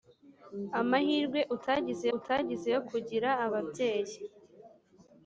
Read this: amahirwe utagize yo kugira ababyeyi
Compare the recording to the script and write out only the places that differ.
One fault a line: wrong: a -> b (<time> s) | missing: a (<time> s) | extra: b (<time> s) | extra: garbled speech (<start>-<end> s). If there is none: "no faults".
extra: utagize (2.2 s)